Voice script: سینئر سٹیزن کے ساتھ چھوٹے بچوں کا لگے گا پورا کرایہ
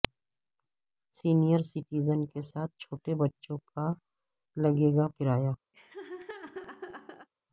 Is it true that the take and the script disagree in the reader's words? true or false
true